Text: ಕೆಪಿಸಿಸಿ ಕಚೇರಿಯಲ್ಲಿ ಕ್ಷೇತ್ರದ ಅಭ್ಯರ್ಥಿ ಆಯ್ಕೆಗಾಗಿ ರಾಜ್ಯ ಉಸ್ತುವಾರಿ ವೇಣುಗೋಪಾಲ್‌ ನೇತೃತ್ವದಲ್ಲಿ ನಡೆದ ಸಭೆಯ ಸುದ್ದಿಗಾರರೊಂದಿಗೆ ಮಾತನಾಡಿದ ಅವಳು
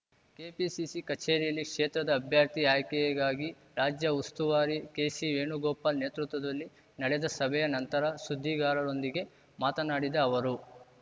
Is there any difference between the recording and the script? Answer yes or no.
yes